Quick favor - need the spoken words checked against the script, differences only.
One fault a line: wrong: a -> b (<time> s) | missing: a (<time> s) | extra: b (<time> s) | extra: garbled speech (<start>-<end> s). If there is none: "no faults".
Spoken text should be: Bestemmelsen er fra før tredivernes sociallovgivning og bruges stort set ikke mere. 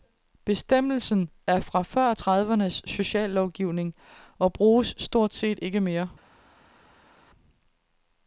no faults